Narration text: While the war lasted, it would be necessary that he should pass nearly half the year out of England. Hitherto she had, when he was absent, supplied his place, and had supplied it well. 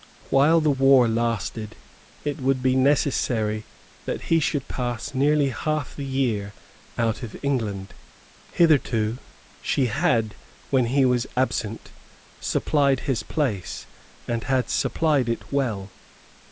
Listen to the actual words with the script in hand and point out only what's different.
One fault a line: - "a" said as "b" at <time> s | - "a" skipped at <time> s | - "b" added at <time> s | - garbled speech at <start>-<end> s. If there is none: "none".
none